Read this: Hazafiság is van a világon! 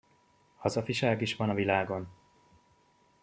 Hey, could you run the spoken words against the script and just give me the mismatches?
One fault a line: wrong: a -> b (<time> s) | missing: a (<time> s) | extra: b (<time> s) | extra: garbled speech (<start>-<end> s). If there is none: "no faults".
no faults